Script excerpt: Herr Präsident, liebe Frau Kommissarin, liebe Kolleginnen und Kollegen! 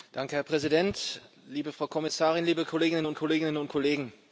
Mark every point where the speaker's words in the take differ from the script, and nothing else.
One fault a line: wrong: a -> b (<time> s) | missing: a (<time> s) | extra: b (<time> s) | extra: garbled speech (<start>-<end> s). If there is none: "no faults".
extra: Kolleginnen und (3.1 s)